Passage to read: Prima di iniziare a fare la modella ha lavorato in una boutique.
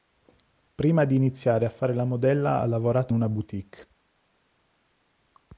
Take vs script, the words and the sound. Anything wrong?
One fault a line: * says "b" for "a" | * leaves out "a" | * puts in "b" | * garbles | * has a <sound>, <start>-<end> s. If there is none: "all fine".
* leaves out "in"